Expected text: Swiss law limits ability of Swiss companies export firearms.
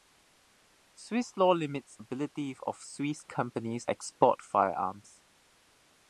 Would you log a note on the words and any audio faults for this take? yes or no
no